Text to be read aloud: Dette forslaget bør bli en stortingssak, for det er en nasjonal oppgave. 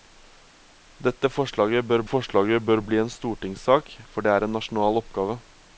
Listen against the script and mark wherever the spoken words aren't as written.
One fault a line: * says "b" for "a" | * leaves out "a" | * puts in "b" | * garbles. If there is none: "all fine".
* puts in "forslaget bør"